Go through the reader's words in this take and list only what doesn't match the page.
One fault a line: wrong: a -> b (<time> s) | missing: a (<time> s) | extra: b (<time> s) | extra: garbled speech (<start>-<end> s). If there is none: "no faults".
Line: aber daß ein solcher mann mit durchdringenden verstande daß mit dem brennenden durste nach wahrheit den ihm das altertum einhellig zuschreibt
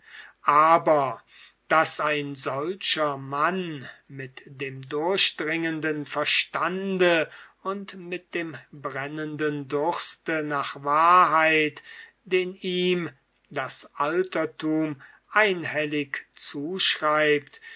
extra: dem (4.4 s)
wrong: daß -> und (7.6 s)